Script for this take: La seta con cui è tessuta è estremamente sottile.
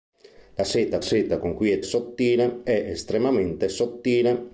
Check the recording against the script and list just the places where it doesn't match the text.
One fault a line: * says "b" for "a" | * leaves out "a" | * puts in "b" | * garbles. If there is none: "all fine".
* puts in "seta"
* says "sottile" for "tessuta"